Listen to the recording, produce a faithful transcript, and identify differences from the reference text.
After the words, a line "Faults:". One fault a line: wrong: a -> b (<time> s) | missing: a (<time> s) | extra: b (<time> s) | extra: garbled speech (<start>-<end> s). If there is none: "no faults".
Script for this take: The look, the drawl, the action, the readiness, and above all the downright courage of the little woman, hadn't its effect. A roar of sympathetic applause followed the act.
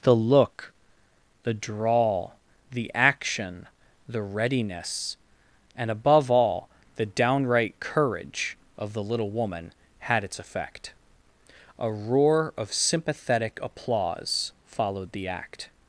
The look, the drawl, the action, the readiness, and above all the downright courage of the little woman, had its effect. A roar of sympathetic applause followed the act.
Faults:
wrong: hadn't -> had (10.0 s)